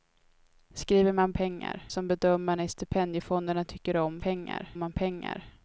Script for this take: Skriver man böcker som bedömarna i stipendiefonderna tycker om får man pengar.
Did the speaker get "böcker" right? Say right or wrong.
wrong